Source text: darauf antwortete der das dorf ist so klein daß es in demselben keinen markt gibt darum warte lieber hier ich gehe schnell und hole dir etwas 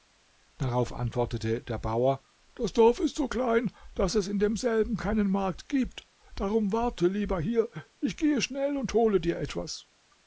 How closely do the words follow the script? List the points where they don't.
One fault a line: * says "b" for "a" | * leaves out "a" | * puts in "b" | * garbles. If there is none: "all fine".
* puts in "bauer"